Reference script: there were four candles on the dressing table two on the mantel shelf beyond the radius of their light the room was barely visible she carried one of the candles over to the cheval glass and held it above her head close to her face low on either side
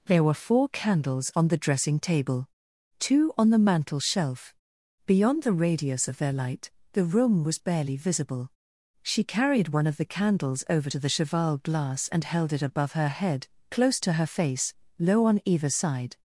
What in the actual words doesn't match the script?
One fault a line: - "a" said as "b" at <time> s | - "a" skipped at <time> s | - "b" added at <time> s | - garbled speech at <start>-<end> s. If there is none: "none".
none